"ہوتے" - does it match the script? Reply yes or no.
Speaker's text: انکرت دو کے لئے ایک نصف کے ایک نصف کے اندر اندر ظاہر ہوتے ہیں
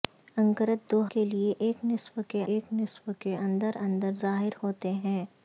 yes